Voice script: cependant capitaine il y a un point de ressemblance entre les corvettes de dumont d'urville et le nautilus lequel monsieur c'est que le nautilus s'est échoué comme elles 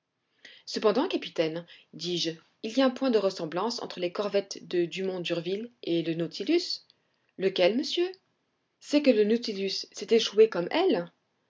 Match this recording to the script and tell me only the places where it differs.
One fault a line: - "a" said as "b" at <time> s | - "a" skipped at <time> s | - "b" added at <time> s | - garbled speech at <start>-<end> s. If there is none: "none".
- "dis je" added at 1.9 s